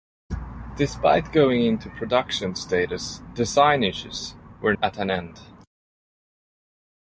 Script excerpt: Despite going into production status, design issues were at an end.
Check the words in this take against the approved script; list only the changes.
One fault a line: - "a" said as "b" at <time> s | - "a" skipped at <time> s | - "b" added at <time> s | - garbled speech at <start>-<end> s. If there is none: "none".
none